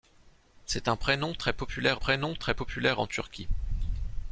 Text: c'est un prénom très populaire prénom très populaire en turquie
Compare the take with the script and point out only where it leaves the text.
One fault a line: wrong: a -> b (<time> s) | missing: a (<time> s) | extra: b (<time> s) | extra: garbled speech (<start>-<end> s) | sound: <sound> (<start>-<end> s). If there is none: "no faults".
no faults